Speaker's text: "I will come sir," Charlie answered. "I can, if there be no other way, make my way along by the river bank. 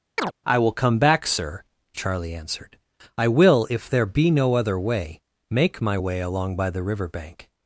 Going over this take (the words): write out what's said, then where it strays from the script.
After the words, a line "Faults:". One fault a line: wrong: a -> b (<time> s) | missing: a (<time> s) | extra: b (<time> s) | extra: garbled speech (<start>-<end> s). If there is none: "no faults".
"I will come back, sir," Charlie answered. "I will, if there be no other way, make my way along by the river bank.
Faults:
extra: back (1.0 s)
wrong: can -> will (3.3 s)